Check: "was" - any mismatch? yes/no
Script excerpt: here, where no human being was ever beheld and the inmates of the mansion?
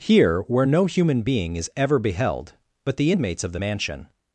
yes